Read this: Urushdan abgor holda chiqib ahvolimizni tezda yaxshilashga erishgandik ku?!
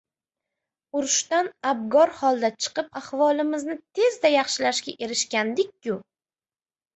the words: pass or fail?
pass